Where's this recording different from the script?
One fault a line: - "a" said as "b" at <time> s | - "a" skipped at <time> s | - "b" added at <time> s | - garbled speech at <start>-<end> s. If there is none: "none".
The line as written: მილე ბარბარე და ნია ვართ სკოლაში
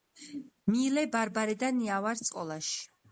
none